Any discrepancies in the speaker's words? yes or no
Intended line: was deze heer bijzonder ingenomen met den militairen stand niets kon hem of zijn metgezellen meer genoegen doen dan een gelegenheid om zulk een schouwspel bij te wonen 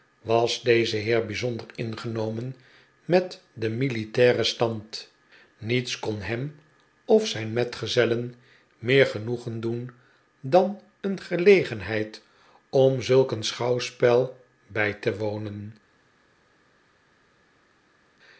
no